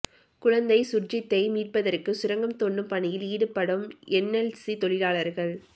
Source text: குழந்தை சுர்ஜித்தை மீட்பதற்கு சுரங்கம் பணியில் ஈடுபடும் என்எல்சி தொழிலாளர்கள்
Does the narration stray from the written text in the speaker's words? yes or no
yes